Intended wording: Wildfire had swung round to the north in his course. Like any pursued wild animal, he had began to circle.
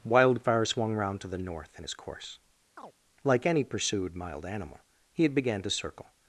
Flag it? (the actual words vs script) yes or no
yes